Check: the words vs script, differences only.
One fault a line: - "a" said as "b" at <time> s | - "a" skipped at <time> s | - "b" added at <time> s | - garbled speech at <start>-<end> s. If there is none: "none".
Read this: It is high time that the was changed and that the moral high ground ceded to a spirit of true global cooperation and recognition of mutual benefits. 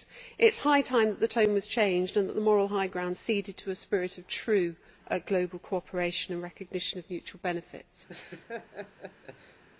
- "tone" added at 1.3 s